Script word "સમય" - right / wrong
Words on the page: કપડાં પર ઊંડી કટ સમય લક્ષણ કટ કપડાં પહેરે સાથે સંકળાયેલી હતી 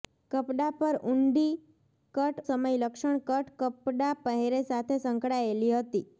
right